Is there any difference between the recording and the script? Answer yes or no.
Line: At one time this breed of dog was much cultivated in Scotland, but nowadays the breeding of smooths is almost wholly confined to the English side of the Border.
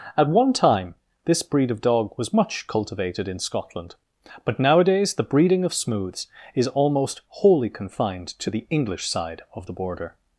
no